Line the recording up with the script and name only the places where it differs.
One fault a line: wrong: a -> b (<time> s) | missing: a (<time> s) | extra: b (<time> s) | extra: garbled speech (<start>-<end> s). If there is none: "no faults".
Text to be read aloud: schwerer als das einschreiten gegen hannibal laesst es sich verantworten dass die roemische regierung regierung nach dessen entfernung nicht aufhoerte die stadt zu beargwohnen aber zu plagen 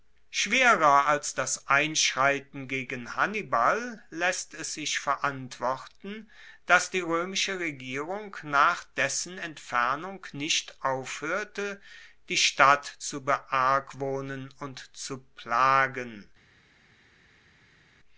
missing: regierung (8.3 s)
wrong: aber -> und (14.6 s)